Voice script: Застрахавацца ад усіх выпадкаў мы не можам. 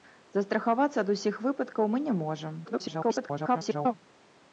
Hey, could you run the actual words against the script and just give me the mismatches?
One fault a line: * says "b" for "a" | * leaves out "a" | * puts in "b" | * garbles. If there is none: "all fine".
* garbles